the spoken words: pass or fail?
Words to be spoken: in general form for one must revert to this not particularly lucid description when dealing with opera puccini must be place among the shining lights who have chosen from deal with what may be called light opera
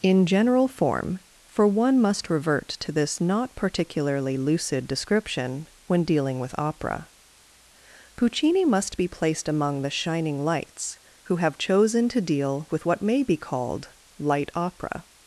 fail